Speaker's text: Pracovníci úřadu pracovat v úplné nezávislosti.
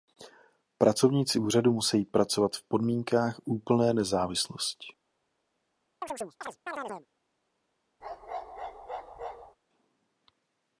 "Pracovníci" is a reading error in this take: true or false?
false